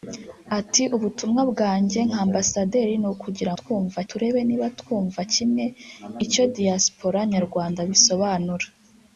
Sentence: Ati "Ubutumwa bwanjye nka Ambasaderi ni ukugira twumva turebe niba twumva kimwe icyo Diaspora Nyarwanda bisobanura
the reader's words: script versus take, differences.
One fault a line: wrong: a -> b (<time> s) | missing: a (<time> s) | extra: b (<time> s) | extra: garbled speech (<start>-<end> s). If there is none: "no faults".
no faults